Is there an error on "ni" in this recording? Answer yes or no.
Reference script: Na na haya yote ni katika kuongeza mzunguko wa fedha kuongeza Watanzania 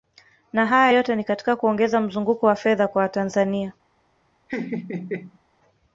no